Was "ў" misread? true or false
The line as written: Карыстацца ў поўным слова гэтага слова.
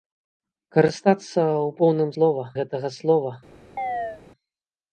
false